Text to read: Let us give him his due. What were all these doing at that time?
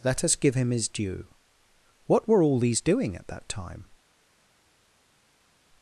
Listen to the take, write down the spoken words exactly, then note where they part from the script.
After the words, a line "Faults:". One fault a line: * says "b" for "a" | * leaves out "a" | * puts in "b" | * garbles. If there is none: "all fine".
Let us give him his due. What were all these doing at that time?
Faults:
all fine